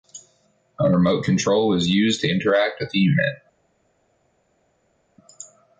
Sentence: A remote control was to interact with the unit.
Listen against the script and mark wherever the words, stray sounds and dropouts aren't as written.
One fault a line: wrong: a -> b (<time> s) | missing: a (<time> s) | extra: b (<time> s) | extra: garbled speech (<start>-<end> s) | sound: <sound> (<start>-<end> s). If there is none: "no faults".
extra: used (1.9 s)